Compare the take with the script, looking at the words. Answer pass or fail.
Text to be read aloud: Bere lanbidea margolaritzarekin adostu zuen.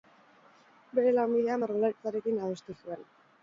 pass